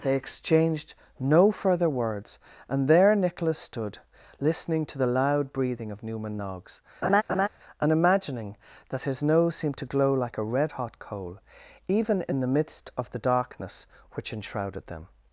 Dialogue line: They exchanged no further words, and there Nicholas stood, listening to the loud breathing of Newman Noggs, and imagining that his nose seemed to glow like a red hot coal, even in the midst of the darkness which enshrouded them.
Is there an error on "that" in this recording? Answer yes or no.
no